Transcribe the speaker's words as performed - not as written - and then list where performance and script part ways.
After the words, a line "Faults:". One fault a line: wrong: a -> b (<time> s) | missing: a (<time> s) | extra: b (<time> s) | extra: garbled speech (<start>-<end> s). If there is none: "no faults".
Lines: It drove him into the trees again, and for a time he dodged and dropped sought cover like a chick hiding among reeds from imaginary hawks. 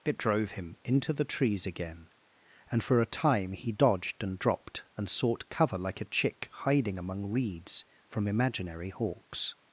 It drove him into the trees again, and for a time he dodged and dropped and sought cover like a chick hiding among reeds from imaginary hawks.
Faults:
extra: and (4.9 s)